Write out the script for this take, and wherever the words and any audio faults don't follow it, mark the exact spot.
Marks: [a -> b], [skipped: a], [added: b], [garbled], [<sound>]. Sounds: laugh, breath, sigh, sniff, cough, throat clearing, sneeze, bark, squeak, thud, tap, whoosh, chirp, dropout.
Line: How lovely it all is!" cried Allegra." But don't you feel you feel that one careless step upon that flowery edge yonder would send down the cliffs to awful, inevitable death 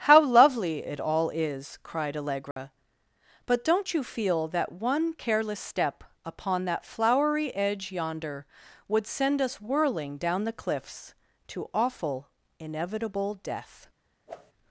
How lovely it all is!" cried Allegra." [dropout] But don't you feel [skipped: you feel] that one careless step upon that flowery edge yonder would send [added: us whirling] down the cliffs to awful, inevitable death [whoosh]